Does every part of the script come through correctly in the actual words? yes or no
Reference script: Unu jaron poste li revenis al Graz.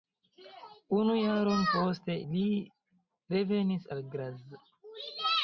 yes